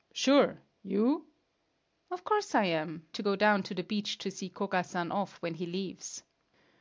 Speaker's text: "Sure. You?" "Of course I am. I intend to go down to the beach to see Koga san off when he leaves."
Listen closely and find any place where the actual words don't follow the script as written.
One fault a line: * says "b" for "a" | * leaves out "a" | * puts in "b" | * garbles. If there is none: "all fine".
* leaves out "I intend"